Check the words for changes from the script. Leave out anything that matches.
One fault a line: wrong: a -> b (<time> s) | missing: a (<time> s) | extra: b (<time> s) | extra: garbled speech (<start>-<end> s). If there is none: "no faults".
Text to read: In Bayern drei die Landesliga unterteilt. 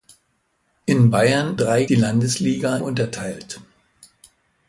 no faults